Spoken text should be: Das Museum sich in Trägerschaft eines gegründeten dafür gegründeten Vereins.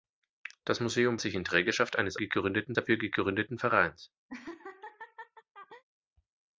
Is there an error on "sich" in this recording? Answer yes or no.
no